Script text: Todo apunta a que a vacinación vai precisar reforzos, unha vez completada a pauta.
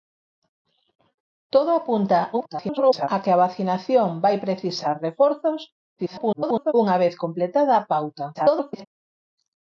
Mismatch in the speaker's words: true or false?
true